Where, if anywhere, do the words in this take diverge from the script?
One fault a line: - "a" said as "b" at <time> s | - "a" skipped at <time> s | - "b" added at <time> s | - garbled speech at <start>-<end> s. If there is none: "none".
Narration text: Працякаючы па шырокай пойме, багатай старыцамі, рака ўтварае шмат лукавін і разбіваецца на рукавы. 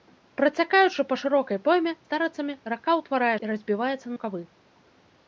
- "багатай" skipped at 1.9 s
- "шмат лукавін" skipped at 3.3 s
- "на" skipped at 4.1 s